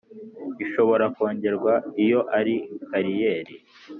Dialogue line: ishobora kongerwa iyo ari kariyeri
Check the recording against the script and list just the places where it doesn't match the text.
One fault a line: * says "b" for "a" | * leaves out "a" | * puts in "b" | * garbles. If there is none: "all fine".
all fine